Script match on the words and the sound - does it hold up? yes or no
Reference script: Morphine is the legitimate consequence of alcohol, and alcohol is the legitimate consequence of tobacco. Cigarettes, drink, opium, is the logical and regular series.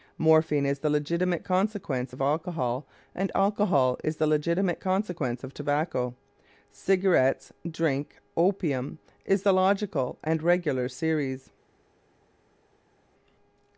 yes